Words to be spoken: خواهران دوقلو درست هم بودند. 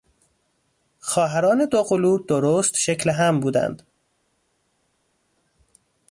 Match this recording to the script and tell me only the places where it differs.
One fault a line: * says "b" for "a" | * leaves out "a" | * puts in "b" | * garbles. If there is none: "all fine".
* puts in "شکل"